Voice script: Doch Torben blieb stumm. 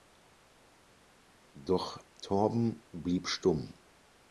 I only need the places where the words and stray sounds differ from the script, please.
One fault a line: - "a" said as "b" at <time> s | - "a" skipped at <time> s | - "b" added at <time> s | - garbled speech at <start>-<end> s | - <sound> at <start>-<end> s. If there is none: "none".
none